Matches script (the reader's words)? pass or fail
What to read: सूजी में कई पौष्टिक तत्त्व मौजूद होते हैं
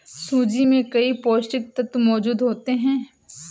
pass